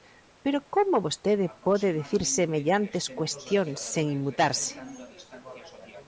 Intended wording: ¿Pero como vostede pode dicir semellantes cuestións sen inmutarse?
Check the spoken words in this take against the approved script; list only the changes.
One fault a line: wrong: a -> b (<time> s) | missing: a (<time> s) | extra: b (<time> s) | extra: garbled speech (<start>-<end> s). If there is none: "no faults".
no faults